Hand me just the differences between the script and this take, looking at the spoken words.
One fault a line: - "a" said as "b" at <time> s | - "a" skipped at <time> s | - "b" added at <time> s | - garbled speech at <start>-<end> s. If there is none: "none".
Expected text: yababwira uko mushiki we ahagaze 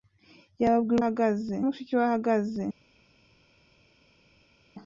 - "uko" said as "ahagaze" at 1.0 s